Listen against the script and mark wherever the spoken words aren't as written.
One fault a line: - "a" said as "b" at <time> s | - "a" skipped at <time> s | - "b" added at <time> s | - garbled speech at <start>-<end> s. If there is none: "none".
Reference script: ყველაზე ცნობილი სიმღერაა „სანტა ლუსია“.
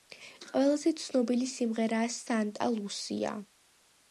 none